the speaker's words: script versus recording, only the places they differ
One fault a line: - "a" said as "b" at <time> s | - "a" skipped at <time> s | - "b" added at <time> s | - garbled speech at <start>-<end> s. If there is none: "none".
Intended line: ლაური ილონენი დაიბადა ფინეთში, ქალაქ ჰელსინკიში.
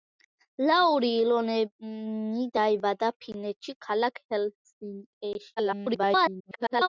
- garbled speech at 5.6-6.9 s